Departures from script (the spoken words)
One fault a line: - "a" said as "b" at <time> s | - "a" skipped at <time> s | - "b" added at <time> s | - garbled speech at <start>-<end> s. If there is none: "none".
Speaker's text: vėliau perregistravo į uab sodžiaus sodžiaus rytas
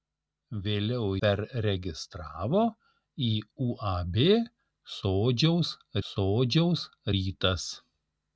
none